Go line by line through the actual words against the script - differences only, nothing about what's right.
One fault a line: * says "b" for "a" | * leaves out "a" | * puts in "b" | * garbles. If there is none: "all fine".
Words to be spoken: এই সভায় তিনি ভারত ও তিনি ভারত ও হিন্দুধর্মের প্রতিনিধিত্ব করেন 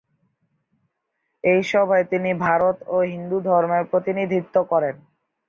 * leaves out "তিনি ভারত ও"